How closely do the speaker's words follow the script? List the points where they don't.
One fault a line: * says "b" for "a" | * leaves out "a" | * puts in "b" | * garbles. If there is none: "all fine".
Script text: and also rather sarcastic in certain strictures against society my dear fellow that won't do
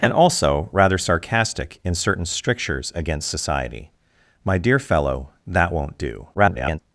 * garbles